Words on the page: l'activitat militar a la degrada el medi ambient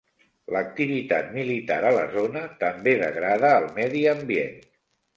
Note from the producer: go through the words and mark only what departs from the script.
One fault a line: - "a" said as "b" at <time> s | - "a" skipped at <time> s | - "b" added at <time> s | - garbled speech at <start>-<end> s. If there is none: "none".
- "zona també" added at 2.2 s